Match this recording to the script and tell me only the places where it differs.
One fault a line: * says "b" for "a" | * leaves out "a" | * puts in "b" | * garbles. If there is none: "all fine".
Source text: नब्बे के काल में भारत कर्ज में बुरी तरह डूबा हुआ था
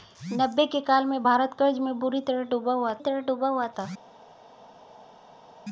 * puts in "तरह डूबा हुआ"